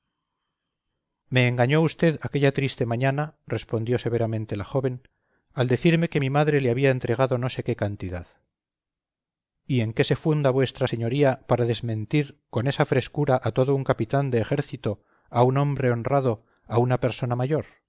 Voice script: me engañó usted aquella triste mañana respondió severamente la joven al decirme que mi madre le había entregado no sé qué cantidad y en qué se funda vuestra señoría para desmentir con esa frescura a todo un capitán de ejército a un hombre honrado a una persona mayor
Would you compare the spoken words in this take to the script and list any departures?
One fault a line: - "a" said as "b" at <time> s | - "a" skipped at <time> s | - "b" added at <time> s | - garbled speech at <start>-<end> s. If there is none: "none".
none